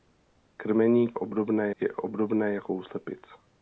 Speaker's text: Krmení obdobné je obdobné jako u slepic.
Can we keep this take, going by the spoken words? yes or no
yes